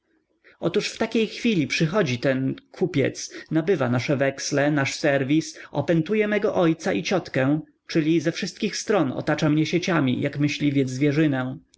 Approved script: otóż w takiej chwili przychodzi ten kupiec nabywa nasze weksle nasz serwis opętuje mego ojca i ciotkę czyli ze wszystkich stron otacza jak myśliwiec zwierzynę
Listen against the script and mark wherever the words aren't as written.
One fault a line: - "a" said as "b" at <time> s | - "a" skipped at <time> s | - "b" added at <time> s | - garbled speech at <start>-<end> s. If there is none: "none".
- "mnie sieciami" added at 9.5 s